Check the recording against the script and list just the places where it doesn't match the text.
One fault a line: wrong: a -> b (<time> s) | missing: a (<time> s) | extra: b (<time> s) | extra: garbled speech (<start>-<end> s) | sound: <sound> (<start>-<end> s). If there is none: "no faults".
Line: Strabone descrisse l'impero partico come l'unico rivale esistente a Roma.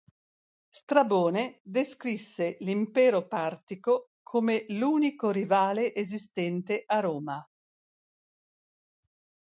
no faults